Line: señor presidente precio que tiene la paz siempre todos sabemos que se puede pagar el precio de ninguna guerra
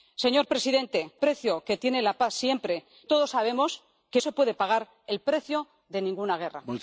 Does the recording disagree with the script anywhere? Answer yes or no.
no